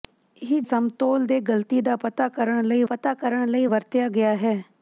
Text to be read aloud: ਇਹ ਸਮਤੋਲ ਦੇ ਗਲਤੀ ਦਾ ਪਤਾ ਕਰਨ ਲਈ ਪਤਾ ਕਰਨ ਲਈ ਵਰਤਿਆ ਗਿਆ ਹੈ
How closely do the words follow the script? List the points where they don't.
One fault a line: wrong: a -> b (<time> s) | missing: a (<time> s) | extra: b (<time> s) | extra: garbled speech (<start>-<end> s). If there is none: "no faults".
no faults